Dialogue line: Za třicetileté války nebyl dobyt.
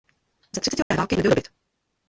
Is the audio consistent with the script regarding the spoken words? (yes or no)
yes